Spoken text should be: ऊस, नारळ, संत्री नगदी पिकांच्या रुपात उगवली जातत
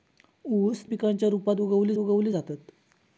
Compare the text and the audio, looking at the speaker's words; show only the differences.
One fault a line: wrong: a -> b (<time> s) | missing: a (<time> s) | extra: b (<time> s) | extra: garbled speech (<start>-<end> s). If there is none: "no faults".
missing: नारळ संत्री नगदी (0.8 s)
extra: उगवली (2.0 s)